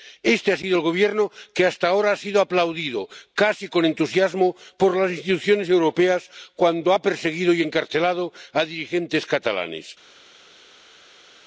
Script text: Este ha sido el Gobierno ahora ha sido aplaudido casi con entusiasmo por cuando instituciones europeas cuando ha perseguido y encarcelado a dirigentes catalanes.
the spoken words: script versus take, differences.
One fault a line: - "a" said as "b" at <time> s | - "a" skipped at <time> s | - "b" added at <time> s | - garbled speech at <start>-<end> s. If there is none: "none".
- "que hasta" added at 1.5 s
- "cuando" said as "las" at 5.0 s